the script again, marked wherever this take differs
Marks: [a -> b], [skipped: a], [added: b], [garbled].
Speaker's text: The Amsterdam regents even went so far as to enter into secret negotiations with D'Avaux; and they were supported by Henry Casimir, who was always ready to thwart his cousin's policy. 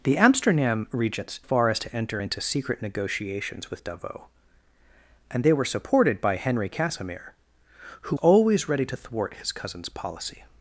The Amsterdam regents [skipped: even went so] far as to enter into secret negotiations with D'Avaux; and they were supported by Henry Casimir, who [skipped: was] always ready to thwart his cousin's policy.